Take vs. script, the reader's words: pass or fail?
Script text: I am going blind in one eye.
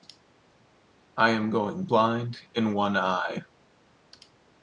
pass